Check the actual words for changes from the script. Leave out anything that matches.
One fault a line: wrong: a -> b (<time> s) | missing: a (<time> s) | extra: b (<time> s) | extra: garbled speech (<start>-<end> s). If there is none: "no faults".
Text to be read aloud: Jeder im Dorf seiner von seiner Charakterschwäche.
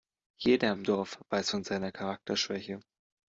wrong: seiner -> weiß (1.3 s)